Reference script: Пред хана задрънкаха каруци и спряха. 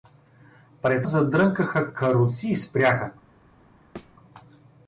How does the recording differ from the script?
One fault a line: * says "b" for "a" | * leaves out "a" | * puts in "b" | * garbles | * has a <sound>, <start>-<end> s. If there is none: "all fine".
* leaves out "хана"
* has a thud, 4.0-4.2 s